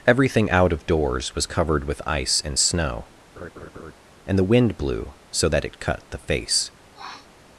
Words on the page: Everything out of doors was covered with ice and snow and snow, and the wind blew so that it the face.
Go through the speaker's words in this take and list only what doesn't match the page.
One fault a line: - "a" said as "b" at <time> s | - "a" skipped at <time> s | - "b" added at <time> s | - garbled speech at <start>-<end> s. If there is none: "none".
- "snow and" skipped at 4.4 s
- "cut" added at 5.8 s